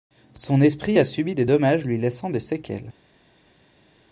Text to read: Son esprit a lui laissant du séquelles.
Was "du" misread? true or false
true